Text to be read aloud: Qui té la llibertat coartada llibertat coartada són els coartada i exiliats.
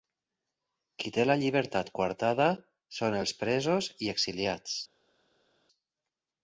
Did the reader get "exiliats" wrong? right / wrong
right